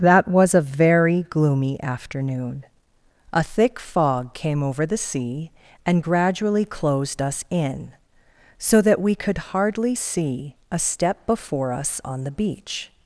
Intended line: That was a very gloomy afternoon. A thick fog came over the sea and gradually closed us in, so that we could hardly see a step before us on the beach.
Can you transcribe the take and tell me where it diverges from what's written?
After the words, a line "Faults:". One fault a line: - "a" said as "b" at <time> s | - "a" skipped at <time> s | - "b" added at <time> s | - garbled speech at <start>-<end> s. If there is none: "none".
That was a very gloomy afternoon. A thick fog came over the sea and gradually closed us in, so that we could hardly see a step before us on the beach.
Faults:
none